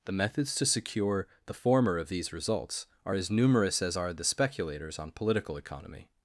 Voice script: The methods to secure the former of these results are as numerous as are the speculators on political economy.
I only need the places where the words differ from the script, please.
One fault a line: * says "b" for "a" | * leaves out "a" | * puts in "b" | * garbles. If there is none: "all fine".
all fine